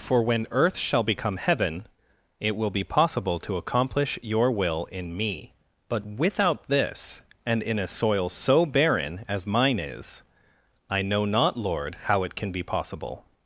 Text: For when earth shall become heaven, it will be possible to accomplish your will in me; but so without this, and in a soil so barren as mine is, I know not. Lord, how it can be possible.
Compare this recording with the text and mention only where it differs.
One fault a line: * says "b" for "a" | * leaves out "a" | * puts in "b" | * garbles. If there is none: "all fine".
* leaves out "so"